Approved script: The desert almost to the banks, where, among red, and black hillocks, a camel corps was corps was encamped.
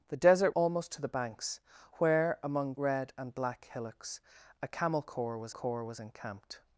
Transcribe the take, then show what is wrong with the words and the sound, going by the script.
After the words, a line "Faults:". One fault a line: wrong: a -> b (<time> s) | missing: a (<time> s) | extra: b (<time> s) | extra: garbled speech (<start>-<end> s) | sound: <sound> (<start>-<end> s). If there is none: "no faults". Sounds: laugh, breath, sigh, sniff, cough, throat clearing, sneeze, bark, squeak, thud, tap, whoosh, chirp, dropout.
The desert almost to the banks, where, among red, and black hillocks, a camel corps was corps was encamped.
Faults:
no faults